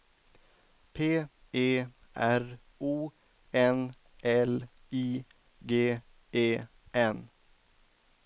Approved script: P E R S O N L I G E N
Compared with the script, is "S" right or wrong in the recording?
wrong